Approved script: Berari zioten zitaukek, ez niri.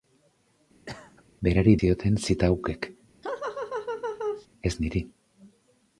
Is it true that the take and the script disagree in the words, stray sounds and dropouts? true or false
true